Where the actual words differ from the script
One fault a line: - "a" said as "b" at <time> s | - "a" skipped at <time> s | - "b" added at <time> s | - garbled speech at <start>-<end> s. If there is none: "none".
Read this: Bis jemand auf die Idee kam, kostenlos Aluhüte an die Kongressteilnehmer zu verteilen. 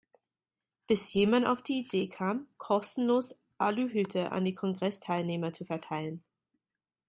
none